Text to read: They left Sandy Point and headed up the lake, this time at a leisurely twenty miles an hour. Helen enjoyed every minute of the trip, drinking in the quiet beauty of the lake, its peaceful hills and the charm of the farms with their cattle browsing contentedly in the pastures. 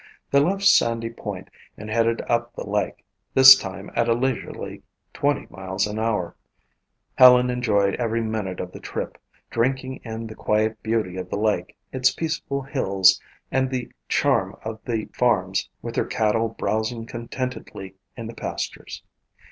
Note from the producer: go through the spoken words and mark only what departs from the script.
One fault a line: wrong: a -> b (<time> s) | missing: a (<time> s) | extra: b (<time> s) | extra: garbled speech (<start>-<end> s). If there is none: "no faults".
no faults